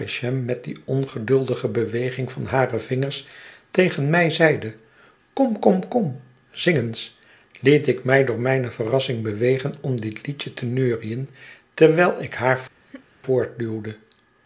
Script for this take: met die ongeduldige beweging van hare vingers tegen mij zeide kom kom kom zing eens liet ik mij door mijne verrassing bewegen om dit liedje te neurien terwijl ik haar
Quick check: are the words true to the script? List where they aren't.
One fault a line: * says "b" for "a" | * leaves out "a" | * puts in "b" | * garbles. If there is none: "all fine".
all fine